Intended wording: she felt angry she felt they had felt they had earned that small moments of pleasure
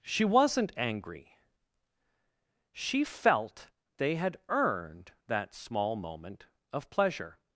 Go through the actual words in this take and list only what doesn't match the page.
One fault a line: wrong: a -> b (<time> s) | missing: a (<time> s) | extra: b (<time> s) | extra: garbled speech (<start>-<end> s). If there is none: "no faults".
wrong: felt -> wasn't (0.2 s)
missing: felt they had (4.4 s)
wrong: moments -> moment (6.0 s)